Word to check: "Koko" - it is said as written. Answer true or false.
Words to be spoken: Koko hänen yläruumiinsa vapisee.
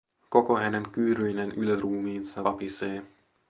true